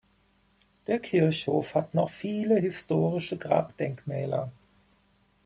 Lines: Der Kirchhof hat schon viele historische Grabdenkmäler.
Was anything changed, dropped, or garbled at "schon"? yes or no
yes